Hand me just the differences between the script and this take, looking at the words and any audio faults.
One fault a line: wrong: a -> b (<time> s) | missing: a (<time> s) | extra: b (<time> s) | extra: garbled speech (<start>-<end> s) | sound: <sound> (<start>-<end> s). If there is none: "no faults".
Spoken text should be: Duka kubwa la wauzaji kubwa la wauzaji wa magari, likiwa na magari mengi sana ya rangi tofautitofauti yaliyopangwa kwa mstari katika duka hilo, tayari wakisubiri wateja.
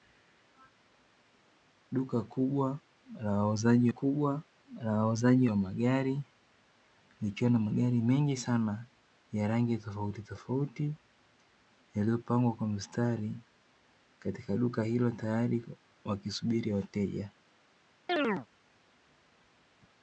sound: chirp (18.1-18.5 s)